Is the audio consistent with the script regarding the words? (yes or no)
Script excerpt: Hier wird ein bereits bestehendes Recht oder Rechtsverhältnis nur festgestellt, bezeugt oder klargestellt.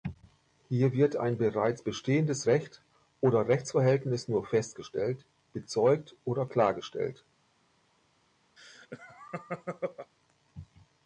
yes